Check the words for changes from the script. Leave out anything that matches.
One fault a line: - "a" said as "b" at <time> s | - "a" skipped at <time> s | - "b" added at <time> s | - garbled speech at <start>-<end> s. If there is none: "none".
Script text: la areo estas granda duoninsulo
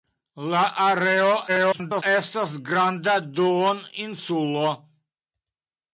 - garbled speech at 1.5-2.0 s